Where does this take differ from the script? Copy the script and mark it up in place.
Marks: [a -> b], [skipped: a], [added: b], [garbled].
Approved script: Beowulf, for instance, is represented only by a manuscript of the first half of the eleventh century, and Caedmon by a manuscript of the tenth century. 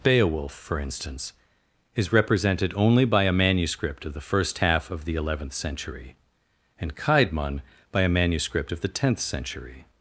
Beowulf, for instance, is represented only by a manuscript of the first half of the eleventh century, and Caedmon by a manuscript of the tenth century.